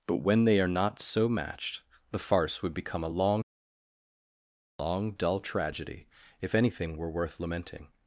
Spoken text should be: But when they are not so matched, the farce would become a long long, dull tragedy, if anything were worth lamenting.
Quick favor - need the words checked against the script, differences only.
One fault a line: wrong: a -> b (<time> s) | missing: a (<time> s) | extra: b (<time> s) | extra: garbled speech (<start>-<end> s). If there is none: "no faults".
no faults